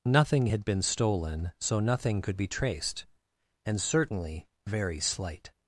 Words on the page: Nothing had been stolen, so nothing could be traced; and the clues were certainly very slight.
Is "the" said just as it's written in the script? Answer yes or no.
no